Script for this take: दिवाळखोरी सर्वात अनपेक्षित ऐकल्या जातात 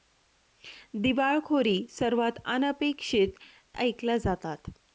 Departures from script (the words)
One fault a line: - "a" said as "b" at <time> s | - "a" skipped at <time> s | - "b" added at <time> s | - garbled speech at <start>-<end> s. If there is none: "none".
none